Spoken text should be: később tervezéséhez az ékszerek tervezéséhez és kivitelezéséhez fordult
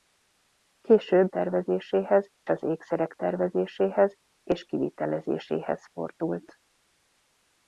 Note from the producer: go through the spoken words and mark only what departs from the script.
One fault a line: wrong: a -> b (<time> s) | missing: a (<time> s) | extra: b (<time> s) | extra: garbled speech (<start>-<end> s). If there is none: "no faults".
no faults